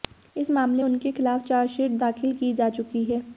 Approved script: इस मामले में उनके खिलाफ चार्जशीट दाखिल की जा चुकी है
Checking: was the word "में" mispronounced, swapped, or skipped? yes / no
yes